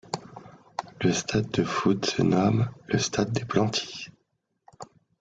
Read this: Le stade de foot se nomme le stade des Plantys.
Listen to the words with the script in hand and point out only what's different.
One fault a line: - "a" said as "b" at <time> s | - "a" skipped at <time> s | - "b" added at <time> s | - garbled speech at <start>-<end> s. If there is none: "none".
none